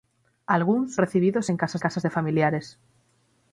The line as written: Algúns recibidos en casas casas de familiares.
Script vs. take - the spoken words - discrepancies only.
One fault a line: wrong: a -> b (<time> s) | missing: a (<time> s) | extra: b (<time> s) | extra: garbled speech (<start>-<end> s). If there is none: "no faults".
no faults